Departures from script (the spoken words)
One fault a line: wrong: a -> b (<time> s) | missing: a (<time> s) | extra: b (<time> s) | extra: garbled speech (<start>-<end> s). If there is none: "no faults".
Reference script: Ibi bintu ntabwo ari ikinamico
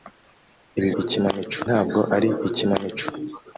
wrong: bintu -> ikinamico (1.0 s)